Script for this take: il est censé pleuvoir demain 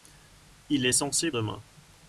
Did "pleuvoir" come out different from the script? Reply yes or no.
yes